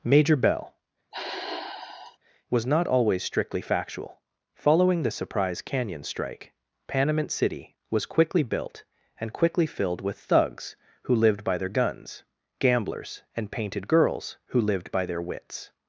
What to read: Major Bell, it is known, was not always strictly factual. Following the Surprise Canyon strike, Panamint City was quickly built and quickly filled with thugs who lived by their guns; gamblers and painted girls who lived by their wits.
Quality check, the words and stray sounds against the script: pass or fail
fail